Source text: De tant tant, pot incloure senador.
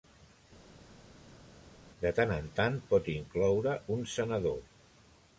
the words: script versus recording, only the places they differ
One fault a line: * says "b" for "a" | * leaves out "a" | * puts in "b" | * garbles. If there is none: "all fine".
* puts in "en"
* puts in "un"